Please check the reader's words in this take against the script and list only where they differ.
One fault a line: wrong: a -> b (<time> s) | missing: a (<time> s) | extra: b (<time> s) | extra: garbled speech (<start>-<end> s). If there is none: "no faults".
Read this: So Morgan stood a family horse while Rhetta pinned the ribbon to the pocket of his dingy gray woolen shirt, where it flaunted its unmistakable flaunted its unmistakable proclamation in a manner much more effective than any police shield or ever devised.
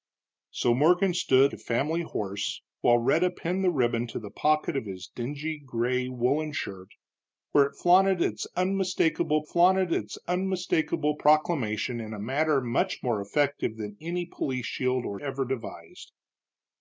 no faults